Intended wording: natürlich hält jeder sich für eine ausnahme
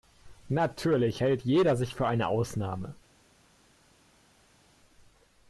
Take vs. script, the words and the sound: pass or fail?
pass